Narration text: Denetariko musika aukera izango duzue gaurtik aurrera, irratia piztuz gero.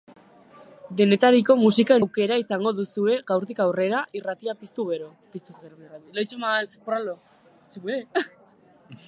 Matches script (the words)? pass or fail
pass